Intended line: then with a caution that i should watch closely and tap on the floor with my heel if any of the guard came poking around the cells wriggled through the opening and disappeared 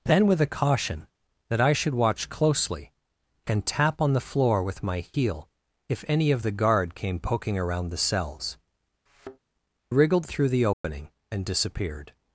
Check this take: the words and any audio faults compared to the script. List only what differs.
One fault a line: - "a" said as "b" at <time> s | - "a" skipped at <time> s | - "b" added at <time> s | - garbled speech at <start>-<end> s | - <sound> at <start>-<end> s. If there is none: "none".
- thud at 9.1-9.4 s
- dropout at 10.7-10.8 s